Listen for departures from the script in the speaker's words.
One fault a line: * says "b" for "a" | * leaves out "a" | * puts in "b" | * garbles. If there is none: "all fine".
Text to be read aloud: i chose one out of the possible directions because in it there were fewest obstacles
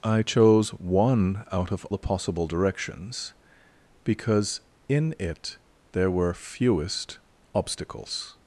all fine